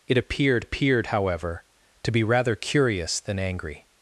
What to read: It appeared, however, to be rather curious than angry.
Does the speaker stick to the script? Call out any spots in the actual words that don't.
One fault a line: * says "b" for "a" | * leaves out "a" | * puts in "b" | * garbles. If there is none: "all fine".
* puts in "appeared"